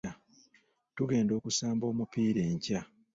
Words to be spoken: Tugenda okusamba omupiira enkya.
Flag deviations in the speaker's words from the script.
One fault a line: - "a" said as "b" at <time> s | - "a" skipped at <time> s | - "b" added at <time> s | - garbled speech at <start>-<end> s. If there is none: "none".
none